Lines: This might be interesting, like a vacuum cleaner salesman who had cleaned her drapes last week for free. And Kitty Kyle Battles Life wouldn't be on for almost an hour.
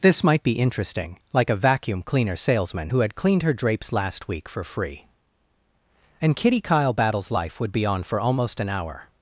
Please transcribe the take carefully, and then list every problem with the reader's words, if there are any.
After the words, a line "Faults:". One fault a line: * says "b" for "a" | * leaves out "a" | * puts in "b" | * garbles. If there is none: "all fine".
This might be interesting, like a vacuum cleaner salesman who had cleaned her drapes last week for free. And Kitty Kyle Battles Life would be on for almost an hour.
Faults:
* says "would" for "wouldn't"